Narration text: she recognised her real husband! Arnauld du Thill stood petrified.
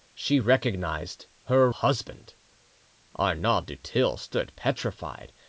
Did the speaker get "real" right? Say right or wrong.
wrong